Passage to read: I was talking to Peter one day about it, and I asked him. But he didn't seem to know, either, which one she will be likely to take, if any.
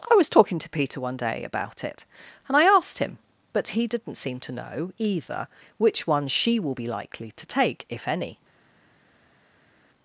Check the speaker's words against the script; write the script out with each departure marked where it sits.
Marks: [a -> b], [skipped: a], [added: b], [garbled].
I was talking to Peter one day about it, and I asked him. But he didn't seem to know, either, which one she will be likely to take, if any.